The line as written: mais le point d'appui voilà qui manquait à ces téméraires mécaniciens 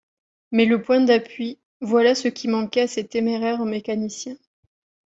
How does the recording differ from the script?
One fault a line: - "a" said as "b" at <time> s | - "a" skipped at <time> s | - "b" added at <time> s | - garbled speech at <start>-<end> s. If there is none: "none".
- "ce" added at 2.1 s